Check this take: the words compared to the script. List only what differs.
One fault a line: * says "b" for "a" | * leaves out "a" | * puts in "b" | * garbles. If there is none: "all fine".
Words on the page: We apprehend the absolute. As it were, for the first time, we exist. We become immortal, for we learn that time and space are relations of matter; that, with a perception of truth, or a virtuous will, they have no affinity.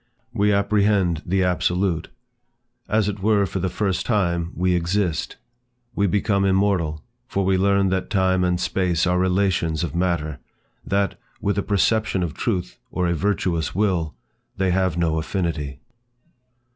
all fine